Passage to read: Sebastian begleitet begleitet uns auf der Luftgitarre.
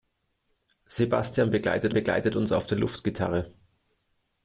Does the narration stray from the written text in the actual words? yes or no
no